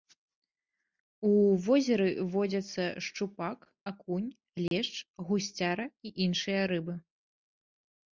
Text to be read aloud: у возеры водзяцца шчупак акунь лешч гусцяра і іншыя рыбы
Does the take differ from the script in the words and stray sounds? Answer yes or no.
yes